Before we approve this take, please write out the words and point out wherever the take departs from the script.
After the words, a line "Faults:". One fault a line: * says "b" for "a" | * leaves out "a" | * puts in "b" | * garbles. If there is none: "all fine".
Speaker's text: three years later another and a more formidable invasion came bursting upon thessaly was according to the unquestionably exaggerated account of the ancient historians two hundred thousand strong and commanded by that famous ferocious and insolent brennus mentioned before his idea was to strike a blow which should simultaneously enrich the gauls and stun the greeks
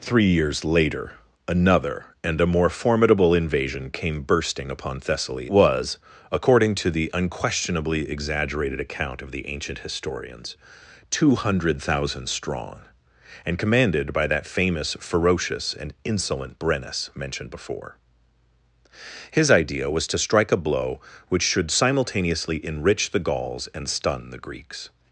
three years later another and a more formidable invasion came bursting upon thessaly was according to the unquestionably exaggerated account of the ancient historians two hundred thousand strong and commanded by that famous ferocious and insolent brennus mentioned before his idea was to strike a blow which should simultaneously enrich the gauls and stun the greeks
Faults:
all fine